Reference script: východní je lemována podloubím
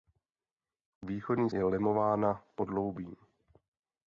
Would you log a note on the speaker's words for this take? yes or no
no